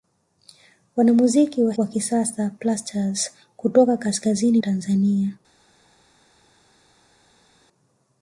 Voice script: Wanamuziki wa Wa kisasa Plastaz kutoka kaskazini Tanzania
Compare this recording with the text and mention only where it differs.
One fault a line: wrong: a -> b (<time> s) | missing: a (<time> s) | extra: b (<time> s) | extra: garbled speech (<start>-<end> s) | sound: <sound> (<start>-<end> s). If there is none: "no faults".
no faults